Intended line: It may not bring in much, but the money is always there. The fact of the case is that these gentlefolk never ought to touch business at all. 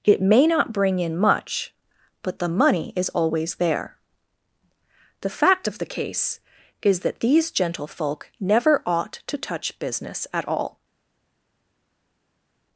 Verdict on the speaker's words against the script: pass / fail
pass